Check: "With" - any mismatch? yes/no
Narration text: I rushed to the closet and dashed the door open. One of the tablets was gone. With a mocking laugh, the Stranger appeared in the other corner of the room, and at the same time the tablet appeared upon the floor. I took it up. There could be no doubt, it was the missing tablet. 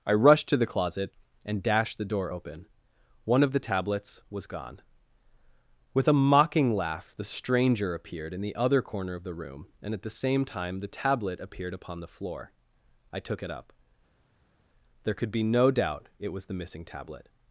no